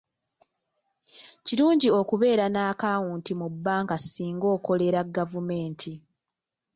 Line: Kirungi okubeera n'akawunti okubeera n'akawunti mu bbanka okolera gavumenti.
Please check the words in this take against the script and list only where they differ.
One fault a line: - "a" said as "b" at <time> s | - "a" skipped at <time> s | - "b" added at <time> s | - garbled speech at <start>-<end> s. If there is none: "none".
- "okubeera n'akawunti" skipped at 3.3 s
- "singa" added at 4.1 s